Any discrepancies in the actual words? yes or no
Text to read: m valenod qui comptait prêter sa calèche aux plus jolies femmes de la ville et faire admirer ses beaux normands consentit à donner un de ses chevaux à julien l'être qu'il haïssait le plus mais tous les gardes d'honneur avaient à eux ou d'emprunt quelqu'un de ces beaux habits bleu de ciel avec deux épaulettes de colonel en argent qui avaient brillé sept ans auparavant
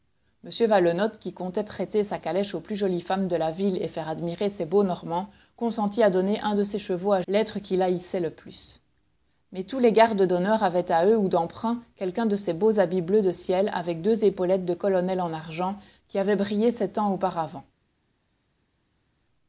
yes